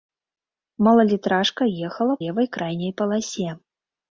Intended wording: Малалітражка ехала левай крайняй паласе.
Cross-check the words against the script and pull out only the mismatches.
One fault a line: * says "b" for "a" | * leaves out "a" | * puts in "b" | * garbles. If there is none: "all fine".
all fine